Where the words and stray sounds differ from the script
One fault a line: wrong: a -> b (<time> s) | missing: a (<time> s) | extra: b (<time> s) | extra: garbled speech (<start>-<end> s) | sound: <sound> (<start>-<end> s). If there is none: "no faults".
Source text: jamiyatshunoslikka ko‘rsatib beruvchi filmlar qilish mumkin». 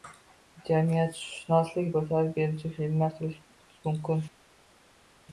no faults